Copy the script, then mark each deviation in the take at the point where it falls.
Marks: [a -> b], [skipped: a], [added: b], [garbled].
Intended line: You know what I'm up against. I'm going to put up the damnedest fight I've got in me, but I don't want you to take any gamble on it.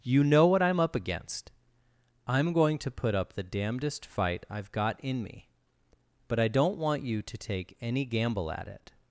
You know what I'm up against. I'm going to put up the damnedest fight I've got in me, but I don't want you to take any gamble [on -> at] it.